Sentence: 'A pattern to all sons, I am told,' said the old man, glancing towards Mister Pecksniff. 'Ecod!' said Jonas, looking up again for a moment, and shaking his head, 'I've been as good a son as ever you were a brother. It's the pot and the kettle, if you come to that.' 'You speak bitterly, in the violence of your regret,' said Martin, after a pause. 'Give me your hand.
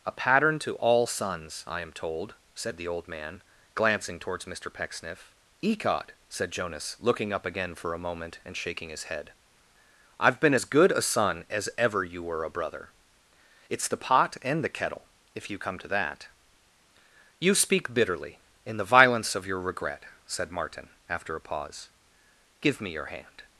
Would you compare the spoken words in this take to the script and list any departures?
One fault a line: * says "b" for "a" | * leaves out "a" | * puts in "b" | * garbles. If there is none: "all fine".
all fine